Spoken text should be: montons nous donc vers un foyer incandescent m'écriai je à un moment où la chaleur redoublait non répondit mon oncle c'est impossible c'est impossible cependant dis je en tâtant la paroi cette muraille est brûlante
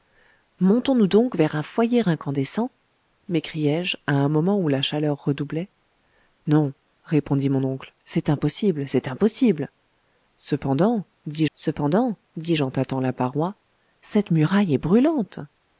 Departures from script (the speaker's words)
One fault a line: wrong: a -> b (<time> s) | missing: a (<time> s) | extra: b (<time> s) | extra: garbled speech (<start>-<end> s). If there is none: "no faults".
extra: cependant dis (11.5 s)